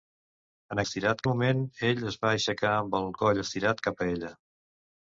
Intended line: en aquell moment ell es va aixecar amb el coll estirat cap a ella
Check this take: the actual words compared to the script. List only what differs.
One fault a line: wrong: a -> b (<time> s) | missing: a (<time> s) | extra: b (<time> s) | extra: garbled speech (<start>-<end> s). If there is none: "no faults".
wrong: aquell -> estirat (0.9 s)